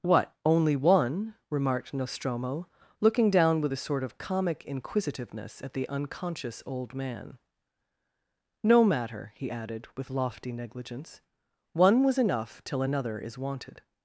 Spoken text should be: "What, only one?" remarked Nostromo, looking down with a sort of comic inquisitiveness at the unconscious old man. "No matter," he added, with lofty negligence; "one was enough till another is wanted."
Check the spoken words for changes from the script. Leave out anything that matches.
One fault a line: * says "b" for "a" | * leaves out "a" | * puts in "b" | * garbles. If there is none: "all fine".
all fine